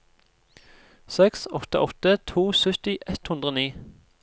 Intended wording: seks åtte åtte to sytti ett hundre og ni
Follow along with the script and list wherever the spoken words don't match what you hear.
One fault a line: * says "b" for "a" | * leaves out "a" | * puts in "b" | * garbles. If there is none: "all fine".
all fine